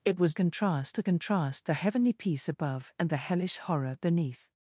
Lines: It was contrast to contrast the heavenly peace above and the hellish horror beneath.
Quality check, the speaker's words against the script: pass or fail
pass